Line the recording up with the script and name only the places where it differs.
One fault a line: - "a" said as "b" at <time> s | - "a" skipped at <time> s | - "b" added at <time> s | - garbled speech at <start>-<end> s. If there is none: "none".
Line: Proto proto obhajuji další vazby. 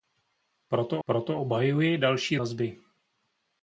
none